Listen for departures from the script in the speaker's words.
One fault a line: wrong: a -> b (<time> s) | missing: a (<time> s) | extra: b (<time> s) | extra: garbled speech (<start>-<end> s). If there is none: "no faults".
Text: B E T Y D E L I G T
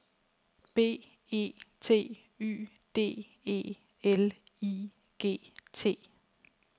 no faults